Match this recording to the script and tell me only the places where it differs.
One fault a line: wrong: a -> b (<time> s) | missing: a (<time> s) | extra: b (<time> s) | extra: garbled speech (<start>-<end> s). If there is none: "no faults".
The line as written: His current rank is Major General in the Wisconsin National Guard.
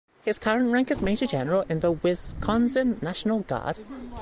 no faults